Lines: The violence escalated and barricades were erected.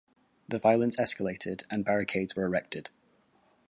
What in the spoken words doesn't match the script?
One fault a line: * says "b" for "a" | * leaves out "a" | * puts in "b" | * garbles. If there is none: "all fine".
all fine